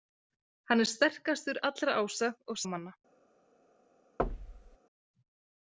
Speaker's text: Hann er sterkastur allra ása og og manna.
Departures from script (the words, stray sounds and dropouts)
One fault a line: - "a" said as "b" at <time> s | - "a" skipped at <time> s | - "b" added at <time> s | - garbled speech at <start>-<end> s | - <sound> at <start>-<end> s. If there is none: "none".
- thud at 4.2-4.8 s